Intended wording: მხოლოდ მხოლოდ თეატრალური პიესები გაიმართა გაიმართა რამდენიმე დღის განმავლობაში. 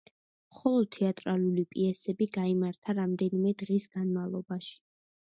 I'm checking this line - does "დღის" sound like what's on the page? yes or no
yes